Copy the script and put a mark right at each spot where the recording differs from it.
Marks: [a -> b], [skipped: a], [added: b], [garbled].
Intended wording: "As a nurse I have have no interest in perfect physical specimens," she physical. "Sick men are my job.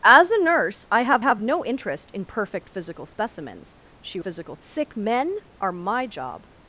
"As a nurse I have have no interest in perfect physical specimens," she physical. "Sick men are my job.